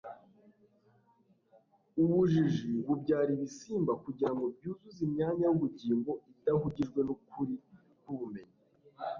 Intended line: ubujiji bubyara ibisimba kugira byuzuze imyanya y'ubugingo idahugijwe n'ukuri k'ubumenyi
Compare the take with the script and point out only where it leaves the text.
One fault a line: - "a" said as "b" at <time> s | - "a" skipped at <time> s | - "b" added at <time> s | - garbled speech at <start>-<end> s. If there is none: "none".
- "ngo" added at 4.3 s